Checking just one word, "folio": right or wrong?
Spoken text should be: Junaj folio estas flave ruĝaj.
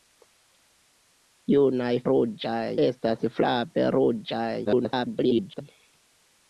wrong